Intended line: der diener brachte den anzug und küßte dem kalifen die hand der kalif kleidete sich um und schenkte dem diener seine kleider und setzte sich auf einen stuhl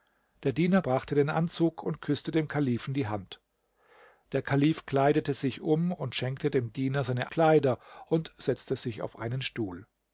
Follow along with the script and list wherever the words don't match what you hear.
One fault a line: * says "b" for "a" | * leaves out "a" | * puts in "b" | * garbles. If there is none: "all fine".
all fine